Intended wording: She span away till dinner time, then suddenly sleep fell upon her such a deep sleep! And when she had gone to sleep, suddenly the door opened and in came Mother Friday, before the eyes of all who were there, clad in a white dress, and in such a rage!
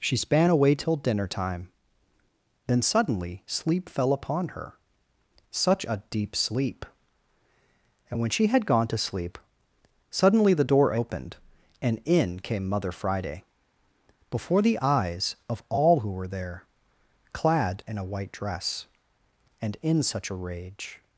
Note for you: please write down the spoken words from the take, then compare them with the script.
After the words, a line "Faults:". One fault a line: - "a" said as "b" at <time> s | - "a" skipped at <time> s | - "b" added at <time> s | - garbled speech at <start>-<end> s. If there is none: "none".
She span away till dinner time, then suddenly sleep fell upon her such a deep sleep! And when she had gone to sleep, suddenly the door opened and in came Mother Friday, before the eyes of all who were there, clad in a white dress, and in such a rage!
Faults:
none